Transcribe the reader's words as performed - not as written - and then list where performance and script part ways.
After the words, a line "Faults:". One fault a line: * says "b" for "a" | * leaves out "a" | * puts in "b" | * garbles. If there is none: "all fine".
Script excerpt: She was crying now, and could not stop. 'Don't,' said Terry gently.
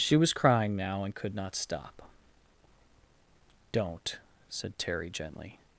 She was crying now, and could not stop. 'Don't,' said Terry gently.
Faults:
all fine